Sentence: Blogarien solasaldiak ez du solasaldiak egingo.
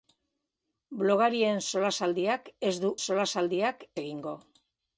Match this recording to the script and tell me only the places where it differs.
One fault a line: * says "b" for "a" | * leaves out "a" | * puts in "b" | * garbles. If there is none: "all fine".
all fine